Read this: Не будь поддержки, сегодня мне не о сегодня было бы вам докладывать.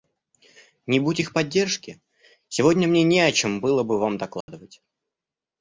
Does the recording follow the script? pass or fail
fail